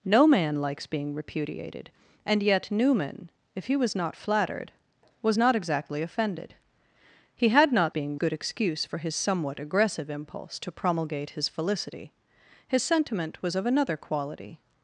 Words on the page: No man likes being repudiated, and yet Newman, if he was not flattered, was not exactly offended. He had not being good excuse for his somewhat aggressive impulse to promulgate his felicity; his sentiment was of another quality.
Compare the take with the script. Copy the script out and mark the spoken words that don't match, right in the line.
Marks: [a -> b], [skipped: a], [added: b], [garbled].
No man likes being repudiated, and yet Newman, if he was not flattered, was not exactly offended. He had not being good excuse for his somewhat aggressive impulse to promulgate his felicity; his sentiment was of another quality.